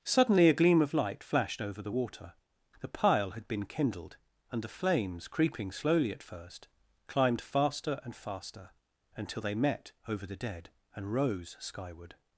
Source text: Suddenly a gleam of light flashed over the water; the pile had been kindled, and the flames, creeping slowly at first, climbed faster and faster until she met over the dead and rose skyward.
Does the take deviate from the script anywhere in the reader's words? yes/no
yes